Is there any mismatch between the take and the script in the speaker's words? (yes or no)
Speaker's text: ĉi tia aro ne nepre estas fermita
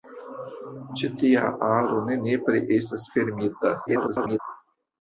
yes